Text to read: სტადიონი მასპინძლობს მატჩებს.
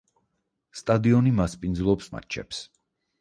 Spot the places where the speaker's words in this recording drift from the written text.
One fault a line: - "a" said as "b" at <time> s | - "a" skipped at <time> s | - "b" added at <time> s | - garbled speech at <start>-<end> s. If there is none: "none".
none